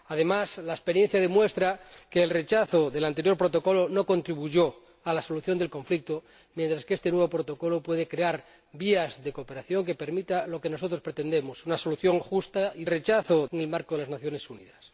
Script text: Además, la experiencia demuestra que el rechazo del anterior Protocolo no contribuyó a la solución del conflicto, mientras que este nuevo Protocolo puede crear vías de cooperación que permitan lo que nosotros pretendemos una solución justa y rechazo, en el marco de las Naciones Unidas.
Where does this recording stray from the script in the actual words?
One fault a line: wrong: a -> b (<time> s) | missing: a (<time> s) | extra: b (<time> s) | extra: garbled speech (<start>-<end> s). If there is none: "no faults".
no faults